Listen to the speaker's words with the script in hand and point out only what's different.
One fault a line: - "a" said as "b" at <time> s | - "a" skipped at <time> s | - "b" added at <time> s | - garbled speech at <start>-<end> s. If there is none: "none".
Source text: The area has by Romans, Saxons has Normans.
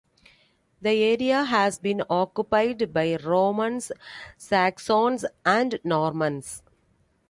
- "been occupied" added at 1.8 s
- "has" said as "and" at 5.4 s